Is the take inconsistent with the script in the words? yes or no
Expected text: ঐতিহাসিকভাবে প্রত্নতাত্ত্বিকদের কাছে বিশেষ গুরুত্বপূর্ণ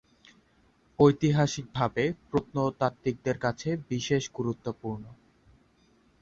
no